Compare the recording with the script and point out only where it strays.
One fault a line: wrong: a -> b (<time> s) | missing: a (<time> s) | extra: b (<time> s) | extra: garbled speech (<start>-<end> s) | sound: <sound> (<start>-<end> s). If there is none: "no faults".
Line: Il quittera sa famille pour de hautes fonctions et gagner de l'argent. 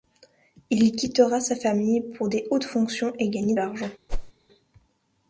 missing: de (3.6 s)
sound: whoosh (4.1-4.3 s)